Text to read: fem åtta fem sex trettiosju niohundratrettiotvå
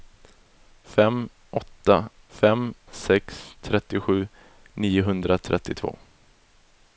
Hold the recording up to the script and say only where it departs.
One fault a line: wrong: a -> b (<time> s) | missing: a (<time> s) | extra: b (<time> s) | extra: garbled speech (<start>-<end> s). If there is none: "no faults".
no faults